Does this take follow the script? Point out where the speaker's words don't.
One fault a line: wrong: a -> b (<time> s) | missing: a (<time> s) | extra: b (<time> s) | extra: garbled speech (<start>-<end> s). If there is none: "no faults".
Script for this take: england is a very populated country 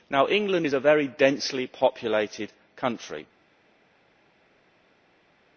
extra: densely (1.1 s)